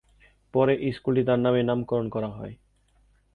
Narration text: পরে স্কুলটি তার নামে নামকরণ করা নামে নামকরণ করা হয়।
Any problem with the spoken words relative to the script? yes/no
yes